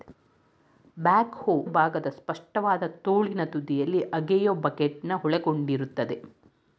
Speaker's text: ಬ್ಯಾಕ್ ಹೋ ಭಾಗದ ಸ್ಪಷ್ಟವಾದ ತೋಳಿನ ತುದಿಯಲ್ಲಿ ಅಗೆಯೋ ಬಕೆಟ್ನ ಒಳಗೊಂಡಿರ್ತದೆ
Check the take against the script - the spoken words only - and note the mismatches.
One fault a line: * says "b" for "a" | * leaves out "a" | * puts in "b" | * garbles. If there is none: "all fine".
all fine